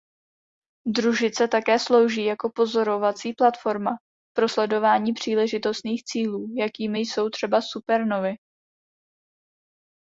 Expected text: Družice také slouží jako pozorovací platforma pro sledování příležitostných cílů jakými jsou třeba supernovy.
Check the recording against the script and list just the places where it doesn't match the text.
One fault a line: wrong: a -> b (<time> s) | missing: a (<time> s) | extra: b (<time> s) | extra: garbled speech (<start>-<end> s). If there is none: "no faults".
no faults